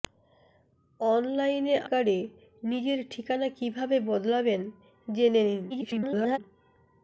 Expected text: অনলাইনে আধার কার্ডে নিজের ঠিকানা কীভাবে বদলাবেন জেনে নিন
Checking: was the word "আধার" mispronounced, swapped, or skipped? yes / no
yes